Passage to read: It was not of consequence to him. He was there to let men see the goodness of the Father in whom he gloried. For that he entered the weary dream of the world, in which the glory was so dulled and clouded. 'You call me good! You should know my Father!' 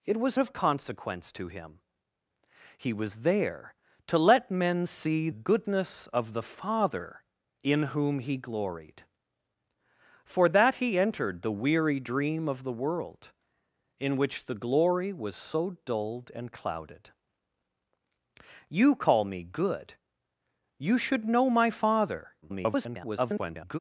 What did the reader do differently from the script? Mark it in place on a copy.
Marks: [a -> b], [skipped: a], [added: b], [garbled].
It was [skipped: not] of consequence to him. He was there to let men see [skipped: the] goodness of the Father in whom he gloried. For that he entered the weary dream of the world, in which the glory was so dulled and clouded. 'You call me good! You should know my Father!' [garbled]